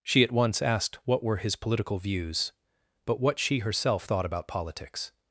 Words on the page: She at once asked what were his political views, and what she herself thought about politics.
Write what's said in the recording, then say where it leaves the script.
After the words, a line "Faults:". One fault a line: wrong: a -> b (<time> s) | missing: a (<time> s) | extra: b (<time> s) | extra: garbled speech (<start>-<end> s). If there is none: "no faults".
She at once asked what were his political views, but what she herself thought about politics.
Faults:
wrong: and -> but (3.0 s)